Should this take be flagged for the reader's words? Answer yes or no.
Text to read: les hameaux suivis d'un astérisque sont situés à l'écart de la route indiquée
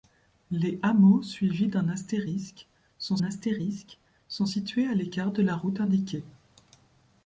yes